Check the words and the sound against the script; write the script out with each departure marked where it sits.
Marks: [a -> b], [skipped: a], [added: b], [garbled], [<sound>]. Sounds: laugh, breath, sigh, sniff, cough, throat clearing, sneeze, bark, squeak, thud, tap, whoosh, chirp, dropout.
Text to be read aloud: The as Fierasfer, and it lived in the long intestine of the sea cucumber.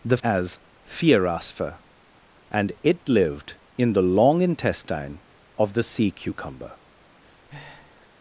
The as Fierasfer, and it lived in the long intestine of the sea cucumber. [breath]